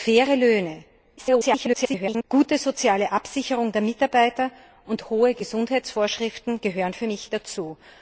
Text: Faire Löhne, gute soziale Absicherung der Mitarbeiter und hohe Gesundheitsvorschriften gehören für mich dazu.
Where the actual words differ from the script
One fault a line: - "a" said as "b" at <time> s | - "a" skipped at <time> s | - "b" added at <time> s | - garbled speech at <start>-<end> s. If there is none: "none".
- garbled speech at 1.2-2.2 s